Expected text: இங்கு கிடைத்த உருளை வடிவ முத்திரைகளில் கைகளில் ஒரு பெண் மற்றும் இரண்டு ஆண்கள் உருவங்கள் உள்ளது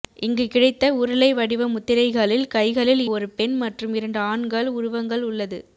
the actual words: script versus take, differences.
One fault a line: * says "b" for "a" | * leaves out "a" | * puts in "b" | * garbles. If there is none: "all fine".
all fine